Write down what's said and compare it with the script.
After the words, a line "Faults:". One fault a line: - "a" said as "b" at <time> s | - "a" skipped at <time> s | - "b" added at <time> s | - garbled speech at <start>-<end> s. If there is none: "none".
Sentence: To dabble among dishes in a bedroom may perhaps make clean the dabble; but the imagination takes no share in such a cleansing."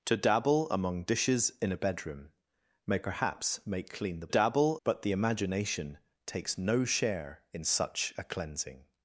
To dabble among dishes in a bedroom may perhaps make clean the dabble; but the imagination takes no share in such a cleansing."
Faults:
none